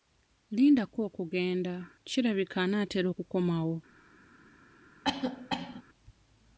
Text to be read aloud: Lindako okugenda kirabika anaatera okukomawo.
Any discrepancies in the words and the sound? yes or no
yes